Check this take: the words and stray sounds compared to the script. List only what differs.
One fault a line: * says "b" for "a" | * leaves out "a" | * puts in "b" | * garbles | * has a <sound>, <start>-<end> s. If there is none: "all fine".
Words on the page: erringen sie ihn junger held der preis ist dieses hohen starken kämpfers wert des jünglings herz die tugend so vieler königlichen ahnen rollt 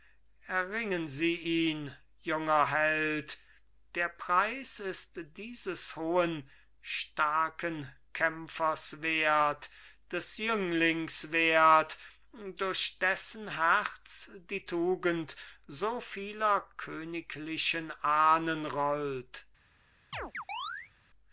* puts in "wert durch dessen"
* has a chirp, 20.1-20.9 s